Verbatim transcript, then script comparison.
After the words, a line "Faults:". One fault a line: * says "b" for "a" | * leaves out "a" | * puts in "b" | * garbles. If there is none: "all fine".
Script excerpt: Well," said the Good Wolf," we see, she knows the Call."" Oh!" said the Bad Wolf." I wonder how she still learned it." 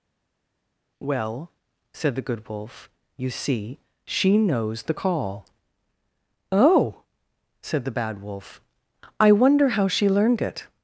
Well," said the Good Wolf," you see, she knows the Call."" Oh!" said the Bad Wolf." I wonder how she learned it."
Faults:
* says "you" for "we"
* leaves out "still"